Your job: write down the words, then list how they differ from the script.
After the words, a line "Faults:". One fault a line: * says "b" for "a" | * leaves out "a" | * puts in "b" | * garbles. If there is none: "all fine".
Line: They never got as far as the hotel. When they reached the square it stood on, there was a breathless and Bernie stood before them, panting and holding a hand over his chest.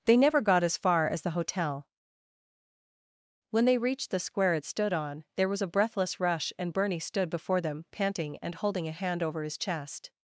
They never got as far as the hotel. When they reached the square it stood on, there was a breathless rush and Bernie stood before them, panting and holding a hand over his chest.
Faults:
* puts in "rush"